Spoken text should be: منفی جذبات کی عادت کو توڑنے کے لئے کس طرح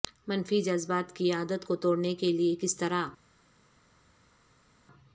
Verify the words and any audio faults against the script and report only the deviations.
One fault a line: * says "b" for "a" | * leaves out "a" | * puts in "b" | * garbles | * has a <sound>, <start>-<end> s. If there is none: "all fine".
all fine